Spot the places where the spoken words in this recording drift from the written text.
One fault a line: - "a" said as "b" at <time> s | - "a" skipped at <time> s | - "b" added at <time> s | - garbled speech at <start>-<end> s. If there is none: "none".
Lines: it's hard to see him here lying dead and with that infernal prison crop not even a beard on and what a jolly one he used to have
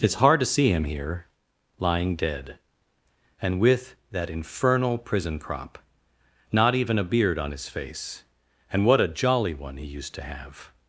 - "his face" added at 7.5 s